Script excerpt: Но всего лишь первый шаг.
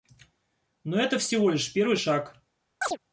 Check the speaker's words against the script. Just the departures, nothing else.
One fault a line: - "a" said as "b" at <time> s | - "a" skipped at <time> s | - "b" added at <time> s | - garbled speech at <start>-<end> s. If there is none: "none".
- "это" added at 1.0 s